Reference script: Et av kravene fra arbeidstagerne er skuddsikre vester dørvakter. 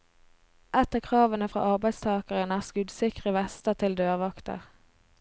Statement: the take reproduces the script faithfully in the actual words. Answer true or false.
false